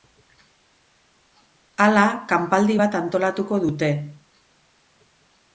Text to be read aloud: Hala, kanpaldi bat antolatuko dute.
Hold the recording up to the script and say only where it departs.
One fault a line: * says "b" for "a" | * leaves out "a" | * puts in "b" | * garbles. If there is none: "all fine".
all fine